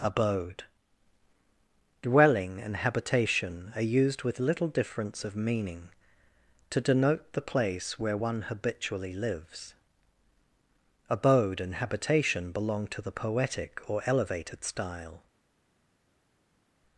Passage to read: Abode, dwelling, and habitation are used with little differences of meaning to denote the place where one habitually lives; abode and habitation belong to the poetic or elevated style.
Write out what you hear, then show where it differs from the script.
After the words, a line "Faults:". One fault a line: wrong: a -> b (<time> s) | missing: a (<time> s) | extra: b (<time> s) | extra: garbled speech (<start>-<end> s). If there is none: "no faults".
Abode, dwelling, and habitation are used with little difference of meaning to denote the place where one habitually lives; abode and habitation belong to the poetic or elevated style.
Faults:
wrong: differences -> difference (4.7 s)